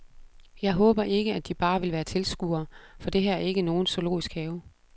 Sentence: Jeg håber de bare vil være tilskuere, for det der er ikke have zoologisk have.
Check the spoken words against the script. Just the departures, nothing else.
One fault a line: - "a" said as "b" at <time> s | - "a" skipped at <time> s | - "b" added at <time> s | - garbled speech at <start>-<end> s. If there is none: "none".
- "ikke at" added at 1.0 s
- "der" said as "her" at 3.2 s
- "have" said as "nogen" at 3.6 s